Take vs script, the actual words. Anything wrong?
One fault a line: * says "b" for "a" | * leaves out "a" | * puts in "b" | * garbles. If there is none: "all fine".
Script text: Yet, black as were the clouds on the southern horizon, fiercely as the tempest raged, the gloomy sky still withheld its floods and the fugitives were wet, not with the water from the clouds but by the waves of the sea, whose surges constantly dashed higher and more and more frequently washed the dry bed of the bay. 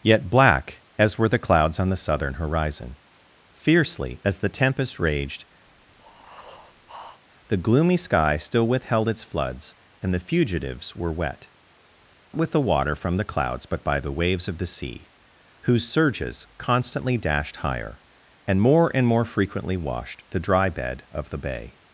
* leaves out "not"